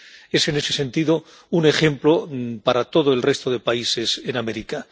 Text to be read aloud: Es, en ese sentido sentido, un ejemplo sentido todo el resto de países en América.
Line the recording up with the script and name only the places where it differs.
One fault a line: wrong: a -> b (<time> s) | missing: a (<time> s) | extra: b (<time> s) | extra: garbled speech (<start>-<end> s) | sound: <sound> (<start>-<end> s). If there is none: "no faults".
missing: sentido (1.2 s)
wrong: sentido -> para (2.6 s)